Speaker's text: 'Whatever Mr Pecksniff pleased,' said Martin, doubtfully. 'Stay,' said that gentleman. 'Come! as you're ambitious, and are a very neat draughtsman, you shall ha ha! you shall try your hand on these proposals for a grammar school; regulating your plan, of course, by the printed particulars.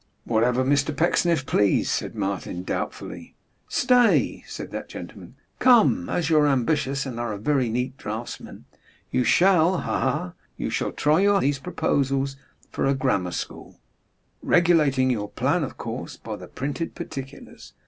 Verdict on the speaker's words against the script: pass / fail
fail